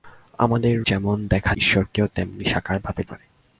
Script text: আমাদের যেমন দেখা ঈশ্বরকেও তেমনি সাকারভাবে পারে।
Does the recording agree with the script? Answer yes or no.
yes